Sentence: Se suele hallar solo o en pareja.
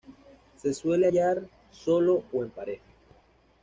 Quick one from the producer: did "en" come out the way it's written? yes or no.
yes